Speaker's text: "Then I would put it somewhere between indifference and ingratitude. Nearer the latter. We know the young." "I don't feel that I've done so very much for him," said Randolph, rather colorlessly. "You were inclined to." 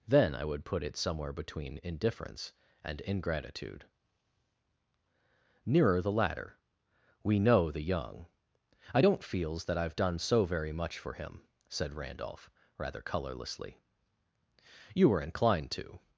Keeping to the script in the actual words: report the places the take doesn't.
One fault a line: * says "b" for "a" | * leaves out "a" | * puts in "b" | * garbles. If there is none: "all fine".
* says "feels" for "feel"